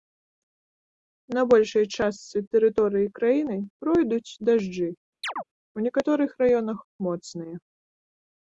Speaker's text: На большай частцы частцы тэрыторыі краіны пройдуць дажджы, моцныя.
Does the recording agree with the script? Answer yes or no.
no